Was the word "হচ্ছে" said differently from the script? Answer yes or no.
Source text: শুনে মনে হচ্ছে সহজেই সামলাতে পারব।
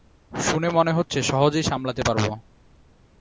no